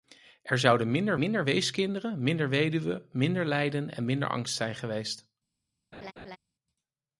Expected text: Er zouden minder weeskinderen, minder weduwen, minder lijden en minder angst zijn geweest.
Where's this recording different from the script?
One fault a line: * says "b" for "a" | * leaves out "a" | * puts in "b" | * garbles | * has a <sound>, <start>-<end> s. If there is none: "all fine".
* puts in "minder"
* has a laugh, 5.9-6.4 s